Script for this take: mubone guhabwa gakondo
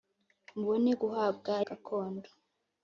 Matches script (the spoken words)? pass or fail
pass